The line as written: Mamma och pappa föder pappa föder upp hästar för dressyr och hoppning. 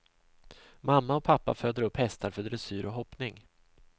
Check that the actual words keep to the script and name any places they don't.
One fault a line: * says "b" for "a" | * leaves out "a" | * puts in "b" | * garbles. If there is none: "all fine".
* leaves out "pappa föder"